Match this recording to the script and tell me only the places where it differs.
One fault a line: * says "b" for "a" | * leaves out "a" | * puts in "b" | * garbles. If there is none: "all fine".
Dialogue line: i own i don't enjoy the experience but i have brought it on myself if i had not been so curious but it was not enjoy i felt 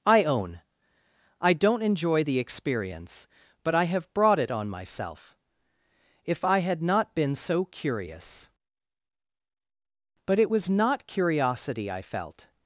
* says "curiosity" for "enjoy"